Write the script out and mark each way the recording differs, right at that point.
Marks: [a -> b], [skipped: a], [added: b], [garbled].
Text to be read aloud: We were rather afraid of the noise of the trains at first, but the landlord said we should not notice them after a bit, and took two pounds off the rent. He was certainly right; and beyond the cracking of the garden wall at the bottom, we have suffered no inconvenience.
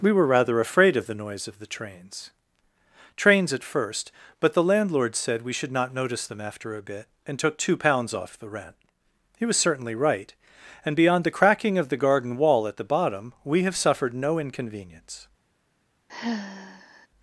We were rather afraid of the noise of the trains [added: trains] at first, but the landlord said we should not notice them after a bit, and took two pounds off the rent. He was certainly right; and beyond the cracking of the garden wall at the bottom, we have suffered no inconvenience.